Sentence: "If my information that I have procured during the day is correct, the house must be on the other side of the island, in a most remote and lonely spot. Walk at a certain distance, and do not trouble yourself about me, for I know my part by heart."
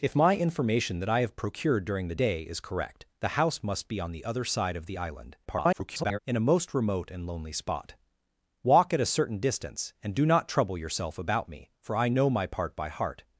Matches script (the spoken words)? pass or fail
fail